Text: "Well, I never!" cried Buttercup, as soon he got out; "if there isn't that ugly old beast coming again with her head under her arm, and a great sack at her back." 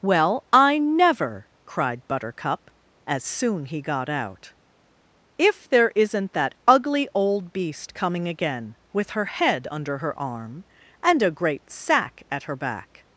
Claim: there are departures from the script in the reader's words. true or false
false